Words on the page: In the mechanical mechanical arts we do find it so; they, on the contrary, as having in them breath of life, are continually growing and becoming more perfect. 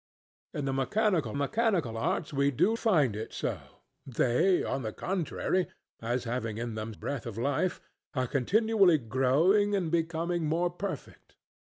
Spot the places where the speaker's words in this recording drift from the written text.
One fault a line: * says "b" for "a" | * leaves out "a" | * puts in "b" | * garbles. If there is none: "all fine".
all fine